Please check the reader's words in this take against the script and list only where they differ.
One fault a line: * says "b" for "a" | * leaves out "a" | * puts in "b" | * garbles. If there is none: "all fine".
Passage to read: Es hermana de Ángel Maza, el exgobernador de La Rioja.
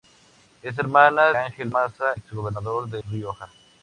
* leaves out "de"
* leaves out "el"
* leaves out "La"